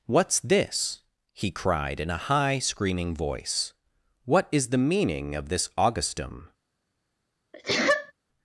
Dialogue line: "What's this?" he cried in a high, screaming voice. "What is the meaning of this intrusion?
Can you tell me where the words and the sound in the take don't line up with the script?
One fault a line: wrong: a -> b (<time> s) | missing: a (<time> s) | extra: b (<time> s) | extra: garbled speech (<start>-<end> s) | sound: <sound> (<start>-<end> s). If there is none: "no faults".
wrong: intrusion -> augustum (5.8 s)
sound: sneeze (7.5-8.1 s)